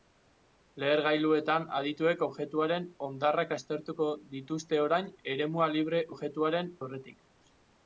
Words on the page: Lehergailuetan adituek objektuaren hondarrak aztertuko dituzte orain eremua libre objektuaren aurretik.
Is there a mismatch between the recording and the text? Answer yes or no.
no